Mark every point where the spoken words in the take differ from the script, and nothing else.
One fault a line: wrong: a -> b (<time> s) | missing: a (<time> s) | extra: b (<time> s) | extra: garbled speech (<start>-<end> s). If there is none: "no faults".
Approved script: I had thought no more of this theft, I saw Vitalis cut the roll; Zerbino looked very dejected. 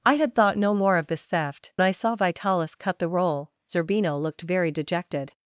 no faults